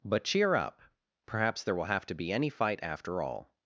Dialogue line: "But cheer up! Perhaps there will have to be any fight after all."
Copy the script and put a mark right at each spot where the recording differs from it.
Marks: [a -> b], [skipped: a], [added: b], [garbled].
"But cheer up! Perhaps there will have to be any fight after all."